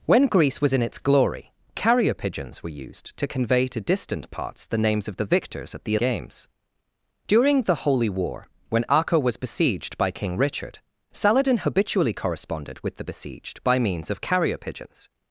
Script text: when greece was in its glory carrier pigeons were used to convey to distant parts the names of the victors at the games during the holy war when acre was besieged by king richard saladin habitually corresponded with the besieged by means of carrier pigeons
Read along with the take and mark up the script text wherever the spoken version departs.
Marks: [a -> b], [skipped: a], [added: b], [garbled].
when greece was in its glory carrier pigeons were used to convey to distant parts the names of the victors at the games during the holy war when acre was besieged by king richard saladin habitually corresponded with the besieged by means of carrier pigeons